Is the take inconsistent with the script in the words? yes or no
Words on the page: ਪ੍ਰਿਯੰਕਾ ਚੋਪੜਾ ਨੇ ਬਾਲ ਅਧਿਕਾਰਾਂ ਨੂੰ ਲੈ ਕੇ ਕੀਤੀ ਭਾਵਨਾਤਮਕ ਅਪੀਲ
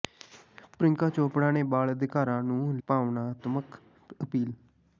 yes